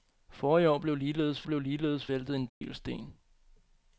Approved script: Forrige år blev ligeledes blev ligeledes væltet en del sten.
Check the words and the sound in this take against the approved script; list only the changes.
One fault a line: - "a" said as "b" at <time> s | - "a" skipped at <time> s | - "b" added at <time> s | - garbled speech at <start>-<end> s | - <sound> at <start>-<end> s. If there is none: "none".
- dropout at 2.5-2.6 s